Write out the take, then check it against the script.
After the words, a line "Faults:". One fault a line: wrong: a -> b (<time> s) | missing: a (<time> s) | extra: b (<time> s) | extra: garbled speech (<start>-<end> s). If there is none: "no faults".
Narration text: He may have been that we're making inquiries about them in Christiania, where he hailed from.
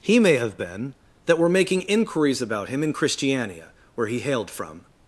He may have been that we're making inquiries about him in Christiania, where he hailed from.
Faults:
wrong: them -> him (2.7 s)